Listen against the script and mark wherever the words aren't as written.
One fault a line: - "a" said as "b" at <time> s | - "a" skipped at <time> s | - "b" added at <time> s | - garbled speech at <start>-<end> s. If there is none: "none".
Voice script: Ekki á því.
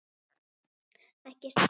none